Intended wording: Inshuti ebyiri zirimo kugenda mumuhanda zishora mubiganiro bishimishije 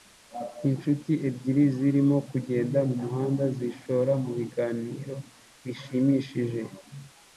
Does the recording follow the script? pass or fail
pass